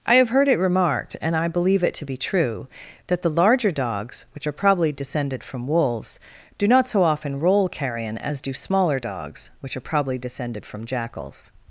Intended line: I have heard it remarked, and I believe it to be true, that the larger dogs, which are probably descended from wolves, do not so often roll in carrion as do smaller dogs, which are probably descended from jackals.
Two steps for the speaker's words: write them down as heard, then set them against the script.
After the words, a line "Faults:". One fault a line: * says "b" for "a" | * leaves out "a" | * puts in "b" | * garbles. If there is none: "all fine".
I have heard it remarked, and I believe it to be true, that the larger dogs, which are probably descended from wolves, do not so often roll carrion as do smaller dogs, which are probably descended from jackals.
Faults:
* leaves out "in"